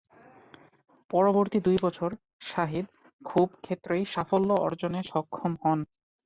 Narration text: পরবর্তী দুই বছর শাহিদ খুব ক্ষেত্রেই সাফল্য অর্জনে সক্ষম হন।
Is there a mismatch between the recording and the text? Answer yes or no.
no